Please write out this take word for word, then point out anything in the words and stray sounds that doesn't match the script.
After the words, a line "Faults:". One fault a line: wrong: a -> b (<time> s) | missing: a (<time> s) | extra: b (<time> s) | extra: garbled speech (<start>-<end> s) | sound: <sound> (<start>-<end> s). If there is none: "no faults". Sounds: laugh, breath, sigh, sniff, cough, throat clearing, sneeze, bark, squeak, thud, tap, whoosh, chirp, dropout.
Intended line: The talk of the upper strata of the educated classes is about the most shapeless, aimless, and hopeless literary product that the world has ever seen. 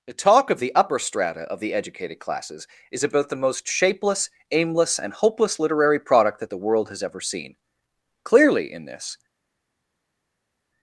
The talk of the upper strata of the educated classes is about the most shapeless, aimless, and hopeless literary product that the world has ever seen. Clearly in this
Faults:
extra: Clearly in this (8.2 s)